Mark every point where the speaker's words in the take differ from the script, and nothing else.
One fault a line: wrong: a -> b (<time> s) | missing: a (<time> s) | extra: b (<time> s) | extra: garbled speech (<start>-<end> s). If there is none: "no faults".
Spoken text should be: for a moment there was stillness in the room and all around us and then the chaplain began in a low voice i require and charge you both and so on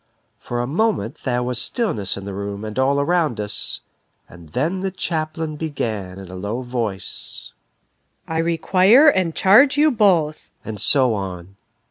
no faults